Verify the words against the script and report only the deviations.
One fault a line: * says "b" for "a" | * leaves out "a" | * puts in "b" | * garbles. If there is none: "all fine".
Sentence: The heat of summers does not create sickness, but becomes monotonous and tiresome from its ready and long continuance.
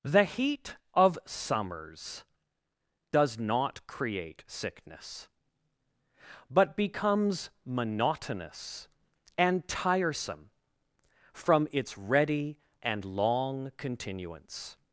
all fine